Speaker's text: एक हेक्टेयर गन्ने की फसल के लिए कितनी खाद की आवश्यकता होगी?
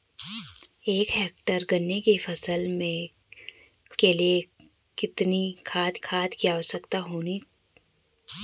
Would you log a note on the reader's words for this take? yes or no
yes